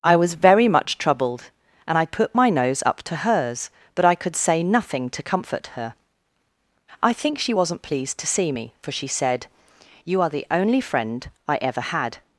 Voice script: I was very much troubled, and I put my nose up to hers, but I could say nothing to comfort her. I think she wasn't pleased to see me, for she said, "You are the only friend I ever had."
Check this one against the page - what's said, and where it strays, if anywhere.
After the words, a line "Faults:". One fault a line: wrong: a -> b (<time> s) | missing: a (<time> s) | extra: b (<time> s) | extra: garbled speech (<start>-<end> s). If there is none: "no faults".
I was very much troubled, and I put my nose up to hers, but I could say nothing to comfort her. I think she wasn't pleased to see me, for she said, "You are the only friend I ever had."
Faults:
no faults